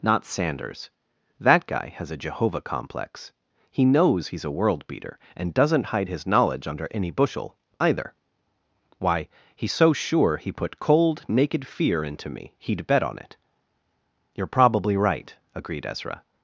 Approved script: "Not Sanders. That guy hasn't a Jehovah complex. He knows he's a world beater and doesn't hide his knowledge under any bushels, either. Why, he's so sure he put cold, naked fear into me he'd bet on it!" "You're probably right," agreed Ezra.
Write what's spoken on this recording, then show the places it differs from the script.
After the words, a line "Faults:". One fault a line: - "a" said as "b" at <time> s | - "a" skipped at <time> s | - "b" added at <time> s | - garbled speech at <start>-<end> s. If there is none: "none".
"Not Sanders. That guy has a Jehovah complex. He knows he's a world beater and doesn't hide his knowledge under any bushel, either. Why, he's so sure he put cold, naked fear into me he'd bet on it!" "You're probably right," agreed Ezra.
Faults:
- "hasn't" said as "has" at 1.9 s
- "bushels" said as "bushel" at 7.1 s